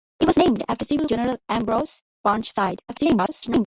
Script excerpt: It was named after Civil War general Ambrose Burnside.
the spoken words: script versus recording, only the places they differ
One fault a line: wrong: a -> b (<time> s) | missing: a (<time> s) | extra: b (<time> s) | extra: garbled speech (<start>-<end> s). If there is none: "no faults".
missing: War (1.1 s)
extra: garbled speech (2.9-3.7 s)